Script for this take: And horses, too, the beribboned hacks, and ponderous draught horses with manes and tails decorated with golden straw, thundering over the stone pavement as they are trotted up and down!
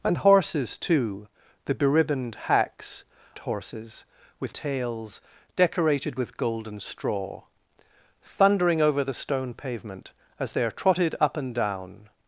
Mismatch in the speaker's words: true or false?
true